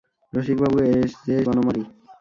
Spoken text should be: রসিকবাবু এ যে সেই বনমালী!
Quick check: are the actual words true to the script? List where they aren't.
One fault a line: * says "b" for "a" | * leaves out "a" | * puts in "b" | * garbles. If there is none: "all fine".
* leaves out "সেই"